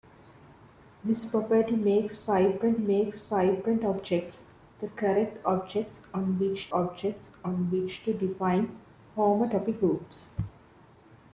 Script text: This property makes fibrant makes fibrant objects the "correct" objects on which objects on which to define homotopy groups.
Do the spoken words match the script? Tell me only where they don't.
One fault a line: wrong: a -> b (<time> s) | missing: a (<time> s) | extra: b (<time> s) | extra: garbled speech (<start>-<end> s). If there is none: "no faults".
no faults